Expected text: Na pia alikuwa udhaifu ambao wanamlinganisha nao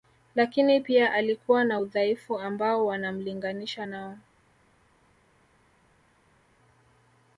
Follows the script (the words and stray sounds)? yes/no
no